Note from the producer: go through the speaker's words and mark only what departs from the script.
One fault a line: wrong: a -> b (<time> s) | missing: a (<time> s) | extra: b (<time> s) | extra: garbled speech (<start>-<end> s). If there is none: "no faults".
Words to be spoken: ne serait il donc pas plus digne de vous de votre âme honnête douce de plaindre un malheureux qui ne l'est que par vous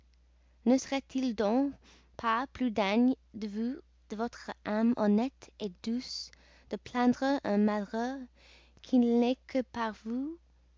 no faults